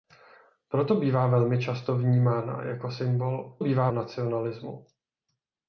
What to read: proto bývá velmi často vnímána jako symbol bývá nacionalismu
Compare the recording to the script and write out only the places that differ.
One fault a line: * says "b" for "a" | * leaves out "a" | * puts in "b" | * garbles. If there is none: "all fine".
all fine